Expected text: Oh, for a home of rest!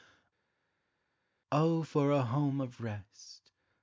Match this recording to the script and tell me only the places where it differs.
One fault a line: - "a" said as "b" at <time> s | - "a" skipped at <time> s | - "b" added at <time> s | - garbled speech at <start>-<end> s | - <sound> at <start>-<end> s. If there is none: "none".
none